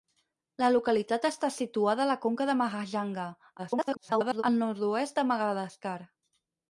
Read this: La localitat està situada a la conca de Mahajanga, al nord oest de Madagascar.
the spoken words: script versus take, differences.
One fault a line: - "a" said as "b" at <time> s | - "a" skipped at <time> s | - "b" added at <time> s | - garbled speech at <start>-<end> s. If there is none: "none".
- garbled speech at 3.6-4.4 s